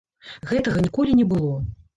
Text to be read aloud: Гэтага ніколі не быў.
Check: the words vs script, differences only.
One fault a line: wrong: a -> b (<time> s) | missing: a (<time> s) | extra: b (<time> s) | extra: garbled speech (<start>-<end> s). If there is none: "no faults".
wrong: быў -> было (1.3 s)